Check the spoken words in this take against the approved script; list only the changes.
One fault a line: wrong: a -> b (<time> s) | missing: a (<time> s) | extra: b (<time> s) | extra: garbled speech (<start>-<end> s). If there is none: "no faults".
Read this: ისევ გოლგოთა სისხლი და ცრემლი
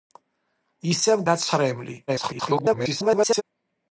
missing: გოლგოთა სისხლი (1.2 s)
extra: garbled speech (2.1-3.4 s)